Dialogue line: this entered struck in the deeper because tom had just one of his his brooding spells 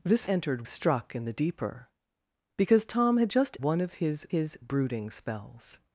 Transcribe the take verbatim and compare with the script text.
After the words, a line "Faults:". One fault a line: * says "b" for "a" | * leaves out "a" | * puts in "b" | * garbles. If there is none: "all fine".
this entered struck in the deeper because tom had just one of his his brooding spells
Faults:
all fine